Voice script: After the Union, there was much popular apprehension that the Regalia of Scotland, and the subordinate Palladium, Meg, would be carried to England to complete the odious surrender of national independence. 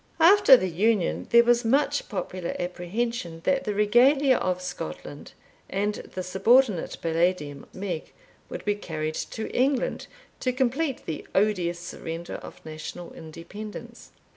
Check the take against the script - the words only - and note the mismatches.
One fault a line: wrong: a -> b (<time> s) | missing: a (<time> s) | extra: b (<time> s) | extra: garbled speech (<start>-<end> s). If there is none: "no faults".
no faults